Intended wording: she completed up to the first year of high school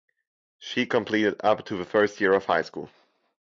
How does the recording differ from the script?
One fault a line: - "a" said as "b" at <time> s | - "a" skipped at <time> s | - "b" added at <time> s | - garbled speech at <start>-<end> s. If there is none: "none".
none